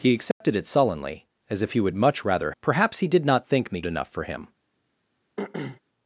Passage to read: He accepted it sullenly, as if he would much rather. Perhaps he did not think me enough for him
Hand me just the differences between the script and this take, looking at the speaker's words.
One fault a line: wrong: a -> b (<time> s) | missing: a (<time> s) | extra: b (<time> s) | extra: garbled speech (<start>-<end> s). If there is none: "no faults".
no faults